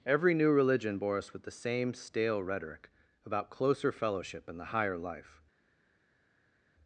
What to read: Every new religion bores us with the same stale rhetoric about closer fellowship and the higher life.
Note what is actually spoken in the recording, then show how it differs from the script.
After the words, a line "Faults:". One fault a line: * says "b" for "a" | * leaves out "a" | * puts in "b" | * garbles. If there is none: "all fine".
Every new religion bore us with the same stale rhetoric about closer fellowship and the higher life.
Faults:
* says "bore" for "bores"